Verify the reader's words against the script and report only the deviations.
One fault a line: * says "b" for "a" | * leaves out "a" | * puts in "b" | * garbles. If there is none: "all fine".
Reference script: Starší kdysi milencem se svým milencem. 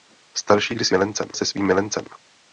all fine